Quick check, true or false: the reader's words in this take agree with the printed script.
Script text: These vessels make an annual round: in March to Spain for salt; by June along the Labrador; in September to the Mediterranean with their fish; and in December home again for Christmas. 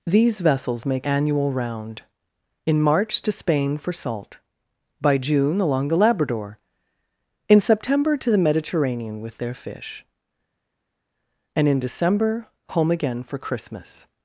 false